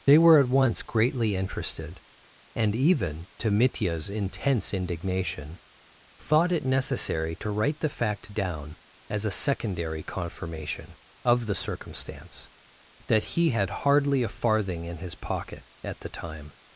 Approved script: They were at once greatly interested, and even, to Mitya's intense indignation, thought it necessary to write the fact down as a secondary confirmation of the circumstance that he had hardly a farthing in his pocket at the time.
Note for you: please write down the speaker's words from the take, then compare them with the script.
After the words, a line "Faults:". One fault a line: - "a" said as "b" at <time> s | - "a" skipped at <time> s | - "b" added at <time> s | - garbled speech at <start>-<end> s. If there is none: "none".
They were at once greatly interested, and even, to Mitya's intense indignation, thought it necessary to write the fact down as a secondary confirmation of the circumstance that he had hardly a farthing in his pocket at the time.
Faults:
none